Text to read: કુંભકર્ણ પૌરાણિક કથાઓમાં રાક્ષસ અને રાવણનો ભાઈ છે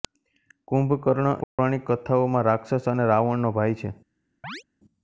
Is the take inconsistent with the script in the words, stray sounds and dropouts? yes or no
yes